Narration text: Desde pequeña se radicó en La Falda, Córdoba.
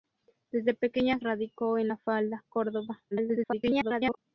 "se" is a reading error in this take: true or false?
true